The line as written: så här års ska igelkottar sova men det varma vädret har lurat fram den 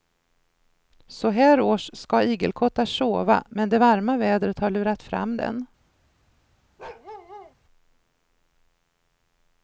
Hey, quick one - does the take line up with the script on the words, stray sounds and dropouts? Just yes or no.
no